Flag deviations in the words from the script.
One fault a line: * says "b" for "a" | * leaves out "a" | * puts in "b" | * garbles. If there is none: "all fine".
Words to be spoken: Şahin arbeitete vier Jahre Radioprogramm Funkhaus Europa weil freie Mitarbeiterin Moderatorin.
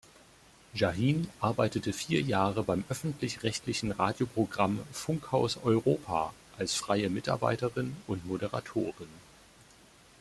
* puts in "beim öffentlich rechtlichen"
* says "als" for "weil"
* puts in "und"